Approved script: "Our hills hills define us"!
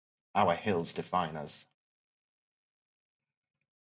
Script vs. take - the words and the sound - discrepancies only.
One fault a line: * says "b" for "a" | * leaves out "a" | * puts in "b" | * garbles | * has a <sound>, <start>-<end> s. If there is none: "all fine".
* leaves out "hills"